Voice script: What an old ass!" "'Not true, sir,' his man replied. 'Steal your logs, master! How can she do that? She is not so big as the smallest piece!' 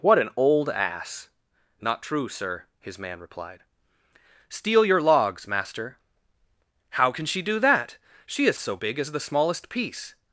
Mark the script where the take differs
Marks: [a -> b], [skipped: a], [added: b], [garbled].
What an old ass!" "'Not true, sir,' his man replied. 'Steal your logs, master! How can she do that? She is [skipped: not] so big as the smallest piece!'